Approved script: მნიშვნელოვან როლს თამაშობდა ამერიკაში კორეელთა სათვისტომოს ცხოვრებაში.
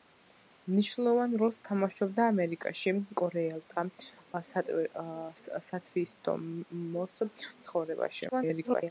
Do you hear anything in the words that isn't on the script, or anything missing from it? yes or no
yes